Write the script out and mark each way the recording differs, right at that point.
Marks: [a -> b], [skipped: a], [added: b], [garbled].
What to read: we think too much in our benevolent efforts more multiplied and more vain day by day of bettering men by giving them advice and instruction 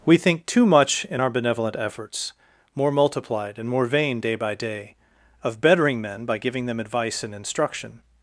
we think too much in our benevolent efforts more multiplied and more vain day by day of bettering men by giving them advice and instruction